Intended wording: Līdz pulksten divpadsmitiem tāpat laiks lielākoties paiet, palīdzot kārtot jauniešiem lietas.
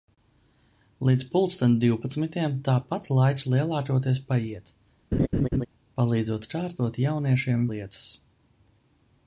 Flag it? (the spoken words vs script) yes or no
no